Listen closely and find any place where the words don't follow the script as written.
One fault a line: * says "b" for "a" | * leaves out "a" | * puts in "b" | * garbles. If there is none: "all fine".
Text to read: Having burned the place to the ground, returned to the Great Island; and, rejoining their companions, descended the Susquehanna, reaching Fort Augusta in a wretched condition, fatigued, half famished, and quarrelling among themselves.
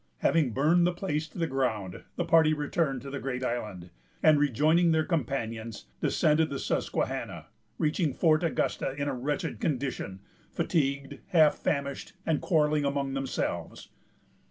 * puts in "the party"